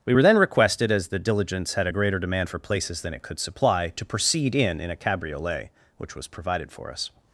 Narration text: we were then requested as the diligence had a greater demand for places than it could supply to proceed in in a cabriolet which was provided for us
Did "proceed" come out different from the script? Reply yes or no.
no